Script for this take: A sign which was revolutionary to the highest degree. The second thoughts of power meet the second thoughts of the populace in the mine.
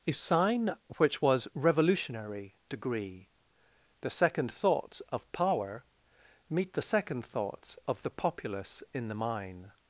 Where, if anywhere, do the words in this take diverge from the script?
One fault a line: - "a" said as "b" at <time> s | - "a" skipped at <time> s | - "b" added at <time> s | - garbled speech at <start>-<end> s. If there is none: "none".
- "to the highest" skipped at 2.5 s